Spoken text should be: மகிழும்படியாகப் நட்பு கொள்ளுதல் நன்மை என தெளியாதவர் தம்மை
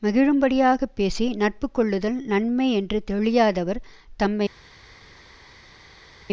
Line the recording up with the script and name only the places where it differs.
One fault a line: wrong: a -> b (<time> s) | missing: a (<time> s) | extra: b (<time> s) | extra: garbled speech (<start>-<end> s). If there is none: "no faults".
extra: பேசி (0.9 s)
wrong: என -> என்று (2.7 s)